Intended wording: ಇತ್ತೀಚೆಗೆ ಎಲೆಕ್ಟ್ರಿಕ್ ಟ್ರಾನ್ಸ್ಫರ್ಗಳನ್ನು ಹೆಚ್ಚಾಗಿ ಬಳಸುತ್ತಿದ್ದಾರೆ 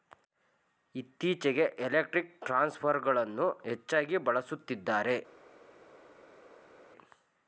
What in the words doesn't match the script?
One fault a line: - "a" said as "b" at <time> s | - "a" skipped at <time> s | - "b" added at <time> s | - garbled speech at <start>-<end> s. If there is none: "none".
none